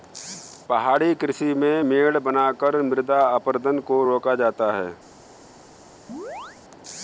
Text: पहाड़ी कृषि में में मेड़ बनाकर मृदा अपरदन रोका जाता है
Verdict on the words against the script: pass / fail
fail